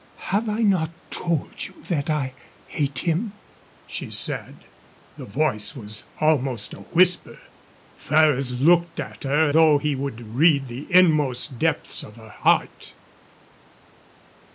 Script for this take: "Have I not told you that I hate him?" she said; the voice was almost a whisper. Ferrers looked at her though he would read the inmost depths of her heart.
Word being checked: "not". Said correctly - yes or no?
yes